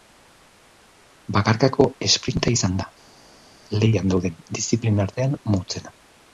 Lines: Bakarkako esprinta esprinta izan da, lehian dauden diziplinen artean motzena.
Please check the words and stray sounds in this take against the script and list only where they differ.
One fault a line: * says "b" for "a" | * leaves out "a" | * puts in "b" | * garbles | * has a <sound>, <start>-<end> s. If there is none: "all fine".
* leaves out "esprinta"